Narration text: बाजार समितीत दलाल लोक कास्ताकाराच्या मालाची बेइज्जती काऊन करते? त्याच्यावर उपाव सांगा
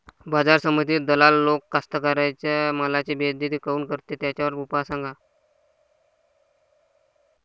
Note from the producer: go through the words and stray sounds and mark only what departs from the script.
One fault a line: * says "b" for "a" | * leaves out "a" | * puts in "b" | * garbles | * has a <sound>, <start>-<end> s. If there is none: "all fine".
all fine